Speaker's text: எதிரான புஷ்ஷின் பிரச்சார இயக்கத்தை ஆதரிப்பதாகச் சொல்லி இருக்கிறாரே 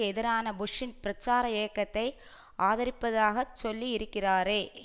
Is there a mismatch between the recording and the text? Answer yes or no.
no